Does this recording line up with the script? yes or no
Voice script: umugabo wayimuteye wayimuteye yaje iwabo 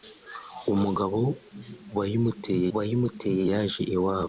yes